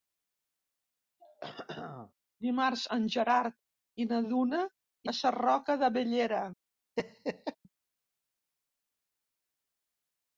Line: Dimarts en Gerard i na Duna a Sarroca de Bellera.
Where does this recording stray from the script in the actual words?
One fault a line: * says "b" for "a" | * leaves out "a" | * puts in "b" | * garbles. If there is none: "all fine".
all fine